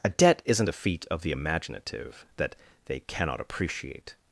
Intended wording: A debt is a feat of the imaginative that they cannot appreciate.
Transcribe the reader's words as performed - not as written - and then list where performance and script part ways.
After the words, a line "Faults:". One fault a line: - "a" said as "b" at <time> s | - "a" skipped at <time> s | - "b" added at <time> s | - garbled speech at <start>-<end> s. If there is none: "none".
A debt isn't a feat of the imaginative that they cannot appreciate.
Faults:
- "is" said as "isn't" at 0.5 s